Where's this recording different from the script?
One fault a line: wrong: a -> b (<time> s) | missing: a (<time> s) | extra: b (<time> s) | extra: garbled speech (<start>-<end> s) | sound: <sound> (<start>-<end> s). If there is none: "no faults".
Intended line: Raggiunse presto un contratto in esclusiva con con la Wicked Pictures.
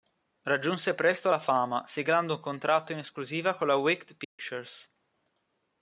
extra: la fama siglando (1.3 s)
missing: con (3.7 s)
sound: dropout (4.2-4.4 s)